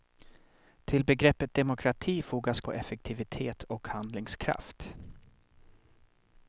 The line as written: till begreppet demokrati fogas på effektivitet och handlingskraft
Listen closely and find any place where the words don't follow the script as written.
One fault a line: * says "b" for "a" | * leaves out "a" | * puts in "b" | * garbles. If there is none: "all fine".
all fine